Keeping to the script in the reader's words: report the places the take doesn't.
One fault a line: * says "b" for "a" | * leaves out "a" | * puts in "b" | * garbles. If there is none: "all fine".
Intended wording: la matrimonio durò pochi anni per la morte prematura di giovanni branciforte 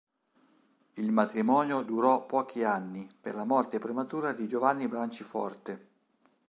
* says "il" for "la"